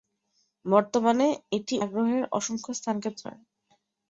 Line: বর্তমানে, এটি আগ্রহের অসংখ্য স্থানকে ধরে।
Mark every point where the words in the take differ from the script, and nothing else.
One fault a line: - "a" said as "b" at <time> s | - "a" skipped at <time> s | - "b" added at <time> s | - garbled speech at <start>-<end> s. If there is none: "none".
none